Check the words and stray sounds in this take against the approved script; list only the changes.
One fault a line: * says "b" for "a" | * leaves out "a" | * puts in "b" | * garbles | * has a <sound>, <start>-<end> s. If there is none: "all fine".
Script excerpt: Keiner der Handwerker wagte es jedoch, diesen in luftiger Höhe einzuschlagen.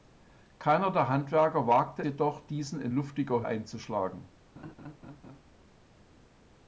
* leaves out "es"
* leaves out "Höhe"
* has a laugh, 4.6-5.4 s